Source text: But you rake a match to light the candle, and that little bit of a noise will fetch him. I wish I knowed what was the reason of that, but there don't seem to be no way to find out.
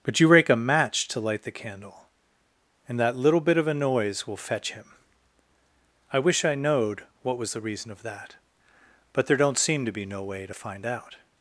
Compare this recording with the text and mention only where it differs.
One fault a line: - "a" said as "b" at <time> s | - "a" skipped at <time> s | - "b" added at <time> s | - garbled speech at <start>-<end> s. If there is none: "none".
none